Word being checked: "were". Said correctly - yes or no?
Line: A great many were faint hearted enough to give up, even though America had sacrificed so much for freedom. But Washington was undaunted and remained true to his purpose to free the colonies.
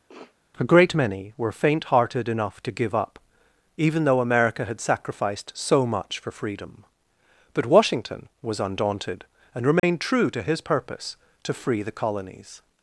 yes